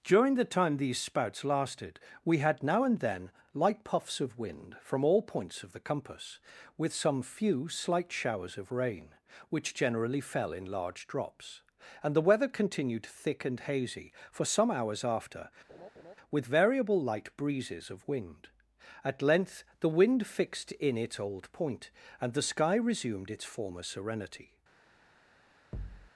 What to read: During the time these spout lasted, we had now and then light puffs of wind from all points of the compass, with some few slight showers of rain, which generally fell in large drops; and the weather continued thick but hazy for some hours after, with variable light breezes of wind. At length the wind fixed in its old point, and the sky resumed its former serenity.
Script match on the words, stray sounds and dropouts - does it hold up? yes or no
no